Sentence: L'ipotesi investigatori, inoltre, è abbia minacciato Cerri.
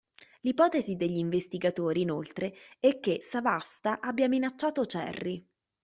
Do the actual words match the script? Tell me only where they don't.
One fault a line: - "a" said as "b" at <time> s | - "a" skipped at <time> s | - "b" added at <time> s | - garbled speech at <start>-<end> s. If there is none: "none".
- "degli" added at 0.9 s
- "che Savasta" added at 3.0 s